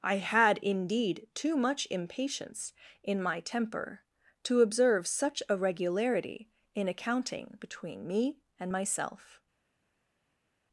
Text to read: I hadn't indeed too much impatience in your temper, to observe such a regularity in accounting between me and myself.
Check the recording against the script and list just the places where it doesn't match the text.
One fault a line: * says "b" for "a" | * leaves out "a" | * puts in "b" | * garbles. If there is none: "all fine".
* says "had" for "hadn't"
* says "my" for "your"